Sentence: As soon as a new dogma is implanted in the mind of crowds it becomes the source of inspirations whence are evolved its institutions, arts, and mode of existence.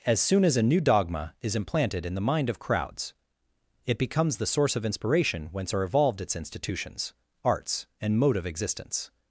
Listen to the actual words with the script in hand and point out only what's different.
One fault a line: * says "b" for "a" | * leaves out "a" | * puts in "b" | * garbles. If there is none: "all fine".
* says "inspiration" for "inspirations"